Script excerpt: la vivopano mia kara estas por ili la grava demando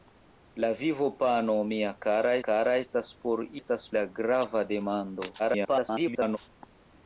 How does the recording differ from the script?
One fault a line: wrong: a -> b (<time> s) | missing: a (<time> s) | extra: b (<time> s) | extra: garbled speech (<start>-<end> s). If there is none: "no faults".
extra: kara (2.5 s)
wrong: ili -> estas (3.6 s)
extra: garbled speech (5.4-6.4 s)